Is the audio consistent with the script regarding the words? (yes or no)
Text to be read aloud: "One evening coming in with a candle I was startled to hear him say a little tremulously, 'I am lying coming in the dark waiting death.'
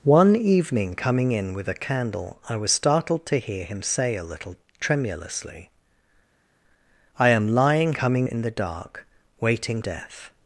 yes